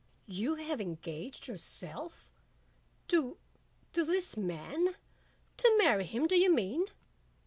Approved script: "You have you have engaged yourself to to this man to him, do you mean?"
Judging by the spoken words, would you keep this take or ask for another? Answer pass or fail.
fail